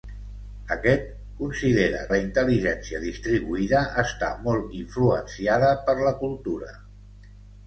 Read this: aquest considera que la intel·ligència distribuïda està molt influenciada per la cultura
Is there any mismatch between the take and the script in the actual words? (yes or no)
yes